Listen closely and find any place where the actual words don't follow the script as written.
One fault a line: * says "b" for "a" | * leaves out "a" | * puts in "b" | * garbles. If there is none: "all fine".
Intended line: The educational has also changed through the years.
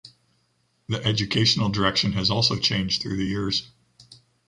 * puts in "direction"